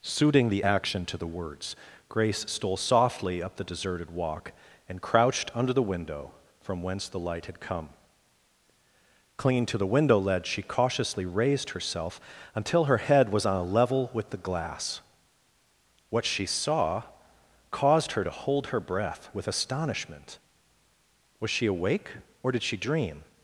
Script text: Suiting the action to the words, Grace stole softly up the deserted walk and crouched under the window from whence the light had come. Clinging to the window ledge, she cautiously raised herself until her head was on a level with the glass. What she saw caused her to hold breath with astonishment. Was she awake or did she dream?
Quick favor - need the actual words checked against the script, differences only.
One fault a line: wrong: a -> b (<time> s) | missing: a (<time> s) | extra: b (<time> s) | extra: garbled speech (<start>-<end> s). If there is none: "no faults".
extra: her (18.7 s)